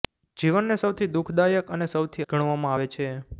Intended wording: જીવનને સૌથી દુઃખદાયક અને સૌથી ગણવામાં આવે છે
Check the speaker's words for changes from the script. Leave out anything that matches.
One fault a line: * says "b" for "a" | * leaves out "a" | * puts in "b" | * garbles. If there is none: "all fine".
all fine